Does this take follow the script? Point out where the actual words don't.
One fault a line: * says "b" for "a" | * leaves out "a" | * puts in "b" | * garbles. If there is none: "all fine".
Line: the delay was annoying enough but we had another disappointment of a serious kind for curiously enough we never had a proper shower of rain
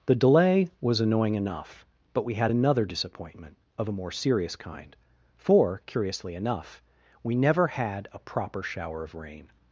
* puts in "more"